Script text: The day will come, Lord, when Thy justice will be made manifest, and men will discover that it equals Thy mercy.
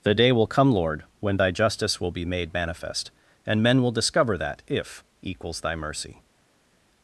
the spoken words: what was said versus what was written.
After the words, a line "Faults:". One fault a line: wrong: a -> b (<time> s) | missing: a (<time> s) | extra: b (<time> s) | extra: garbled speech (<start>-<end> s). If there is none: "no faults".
The day will come, Lord, when Thy justice will be made manifest, and men will discover that if equals Thy mercy.
Faults:
wrong: it -> if (4.7 s)